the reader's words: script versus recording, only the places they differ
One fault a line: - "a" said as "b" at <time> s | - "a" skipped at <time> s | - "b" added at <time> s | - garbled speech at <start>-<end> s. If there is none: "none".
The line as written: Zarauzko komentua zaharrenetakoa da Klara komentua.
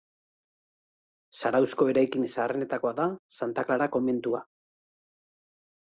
- "komentua" said as "eraikin" at 1.9 s
- "Santa" added at 3.4 s